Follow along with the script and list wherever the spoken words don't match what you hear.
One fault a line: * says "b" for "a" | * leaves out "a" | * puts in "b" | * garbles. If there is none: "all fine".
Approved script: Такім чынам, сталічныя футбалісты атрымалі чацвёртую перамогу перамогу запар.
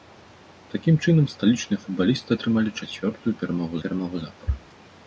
all fine